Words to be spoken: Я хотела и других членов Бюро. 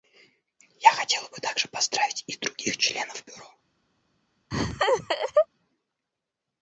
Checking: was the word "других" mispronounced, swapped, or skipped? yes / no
no